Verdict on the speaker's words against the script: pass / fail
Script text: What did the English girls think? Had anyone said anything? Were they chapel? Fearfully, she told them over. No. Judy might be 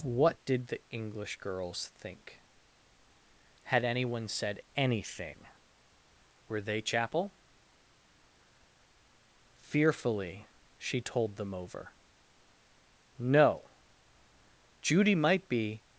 pass